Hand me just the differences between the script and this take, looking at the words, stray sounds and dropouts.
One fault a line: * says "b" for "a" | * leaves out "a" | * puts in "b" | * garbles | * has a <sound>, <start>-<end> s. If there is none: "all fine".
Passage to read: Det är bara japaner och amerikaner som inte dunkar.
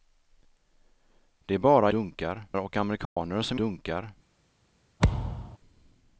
* says "dunkar" for "japaner"
* has a dropout, 3.0-3.2 s
* leaves out "inte"
* has a thud, 5.0-5.6 s